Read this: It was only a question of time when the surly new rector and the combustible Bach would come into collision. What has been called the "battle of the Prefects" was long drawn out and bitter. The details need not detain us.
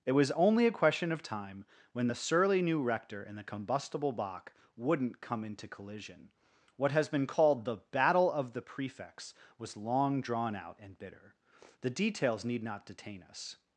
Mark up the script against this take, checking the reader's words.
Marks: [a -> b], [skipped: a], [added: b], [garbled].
It was only a question of time when the surly new rector and the combustible Bach [would -> wouldn't] come into collision. What has been called the "battle of the Prefects" was long drawn out and bitter. The details need not detain us.